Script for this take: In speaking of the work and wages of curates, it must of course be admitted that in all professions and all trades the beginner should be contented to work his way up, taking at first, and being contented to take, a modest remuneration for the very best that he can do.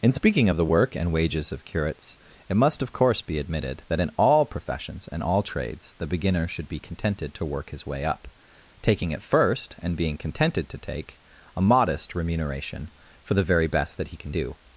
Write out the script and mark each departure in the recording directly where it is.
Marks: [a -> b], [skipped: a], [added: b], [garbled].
In speaking of the work and wages of curates, it must of course be admitted that in all professions and all trades the beginner should be contented to work his way up, taking at first, and being contented to take, a modest remuneration for the very best that he can do.